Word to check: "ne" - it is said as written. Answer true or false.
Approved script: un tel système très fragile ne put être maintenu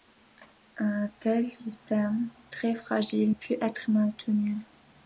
false